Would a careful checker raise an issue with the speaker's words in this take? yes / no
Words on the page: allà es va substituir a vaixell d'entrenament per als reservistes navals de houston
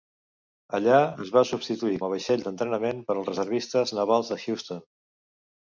no